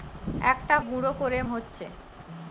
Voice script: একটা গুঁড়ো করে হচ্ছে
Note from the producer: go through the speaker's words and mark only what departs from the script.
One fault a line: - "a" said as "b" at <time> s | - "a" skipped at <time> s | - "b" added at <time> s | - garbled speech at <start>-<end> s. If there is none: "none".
none